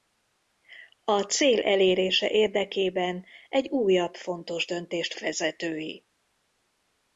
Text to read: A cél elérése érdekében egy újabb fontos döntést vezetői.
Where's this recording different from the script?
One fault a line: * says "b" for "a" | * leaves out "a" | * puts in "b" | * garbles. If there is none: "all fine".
all fine